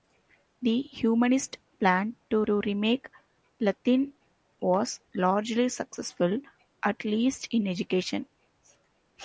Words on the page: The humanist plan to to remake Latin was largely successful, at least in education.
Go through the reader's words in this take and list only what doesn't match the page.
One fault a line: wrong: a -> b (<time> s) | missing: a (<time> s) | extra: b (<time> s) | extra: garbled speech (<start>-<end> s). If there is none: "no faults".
no faults